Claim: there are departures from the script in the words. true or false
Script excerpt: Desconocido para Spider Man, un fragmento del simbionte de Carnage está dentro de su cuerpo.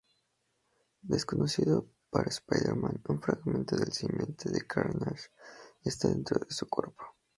false